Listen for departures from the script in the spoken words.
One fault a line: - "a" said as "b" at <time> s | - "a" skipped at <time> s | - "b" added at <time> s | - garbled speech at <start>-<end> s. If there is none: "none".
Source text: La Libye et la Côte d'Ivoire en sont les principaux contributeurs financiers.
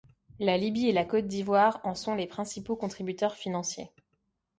none